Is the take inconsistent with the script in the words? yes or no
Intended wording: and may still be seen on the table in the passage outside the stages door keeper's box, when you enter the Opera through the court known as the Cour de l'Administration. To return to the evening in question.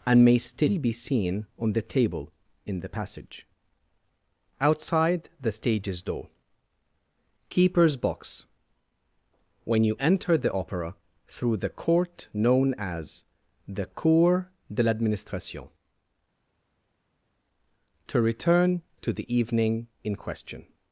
no